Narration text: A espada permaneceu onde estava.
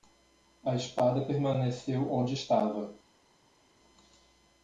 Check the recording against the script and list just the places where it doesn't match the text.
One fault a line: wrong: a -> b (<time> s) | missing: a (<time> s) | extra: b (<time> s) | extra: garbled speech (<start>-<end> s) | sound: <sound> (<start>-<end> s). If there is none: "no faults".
no faults